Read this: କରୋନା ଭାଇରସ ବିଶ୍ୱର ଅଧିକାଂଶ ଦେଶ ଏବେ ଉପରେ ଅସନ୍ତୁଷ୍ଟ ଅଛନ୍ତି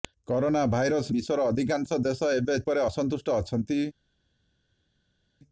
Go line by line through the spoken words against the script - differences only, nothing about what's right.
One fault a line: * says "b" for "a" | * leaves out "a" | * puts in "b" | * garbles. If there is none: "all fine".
all fine